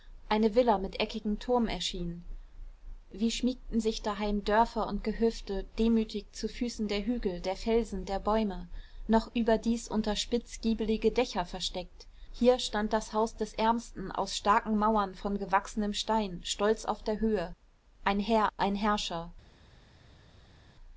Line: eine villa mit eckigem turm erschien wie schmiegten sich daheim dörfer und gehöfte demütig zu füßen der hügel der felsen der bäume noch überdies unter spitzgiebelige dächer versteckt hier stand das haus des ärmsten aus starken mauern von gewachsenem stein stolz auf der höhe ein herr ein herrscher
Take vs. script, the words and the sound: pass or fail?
pass